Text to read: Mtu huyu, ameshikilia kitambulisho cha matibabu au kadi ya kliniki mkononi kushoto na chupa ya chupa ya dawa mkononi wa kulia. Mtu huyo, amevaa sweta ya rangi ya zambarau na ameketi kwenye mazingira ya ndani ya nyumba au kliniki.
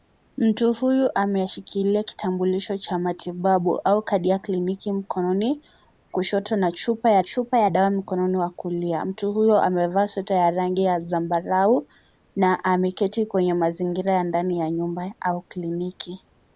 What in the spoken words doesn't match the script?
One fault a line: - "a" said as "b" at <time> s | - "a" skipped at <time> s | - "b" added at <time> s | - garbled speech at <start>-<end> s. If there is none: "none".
none